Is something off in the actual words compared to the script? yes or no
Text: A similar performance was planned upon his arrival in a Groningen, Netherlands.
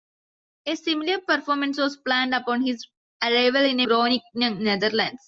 no